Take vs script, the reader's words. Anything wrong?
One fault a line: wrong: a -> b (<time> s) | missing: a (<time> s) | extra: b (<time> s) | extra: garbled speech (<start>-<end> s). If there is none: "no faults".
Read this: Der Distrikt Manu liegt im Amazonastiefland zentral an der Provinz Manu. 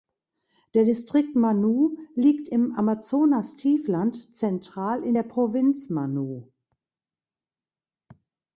wrong: an -> in (5.0 s)